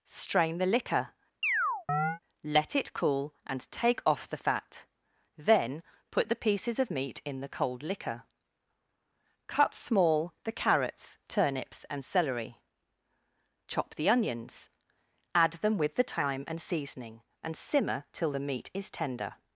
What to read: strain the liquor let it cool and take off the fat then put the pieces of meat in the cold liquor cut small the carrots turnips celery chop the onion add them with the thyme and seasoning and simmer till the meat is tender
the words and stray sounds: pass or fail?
fail